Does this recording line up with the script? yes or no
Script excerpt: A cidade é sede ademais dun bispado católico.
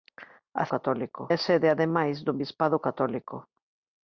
no